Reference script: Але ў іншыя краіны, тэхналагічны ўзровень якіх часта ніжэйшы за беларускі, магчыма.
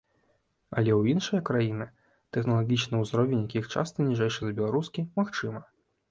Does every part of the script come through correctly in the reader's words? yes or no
yes